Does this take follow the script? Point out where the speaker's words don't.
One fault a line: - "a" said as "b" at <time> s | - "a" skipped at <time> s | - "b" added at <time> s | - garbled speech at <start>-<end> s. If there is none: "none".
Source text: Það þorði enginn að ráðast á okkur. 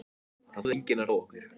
- "þorði" skipped at 0.7 s
- "ráðast" skipped at 1.1 s